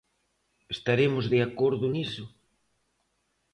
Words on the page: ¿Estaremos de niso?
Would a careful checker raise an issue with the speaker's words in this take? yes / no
yes